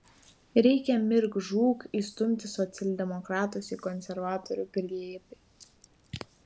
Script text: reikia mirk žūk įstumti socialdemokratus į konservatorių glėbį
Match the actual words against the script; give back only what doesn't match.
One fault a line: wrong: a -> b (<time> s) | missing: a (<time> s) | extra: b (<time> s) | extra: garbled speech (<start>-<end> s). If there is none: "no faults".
no faults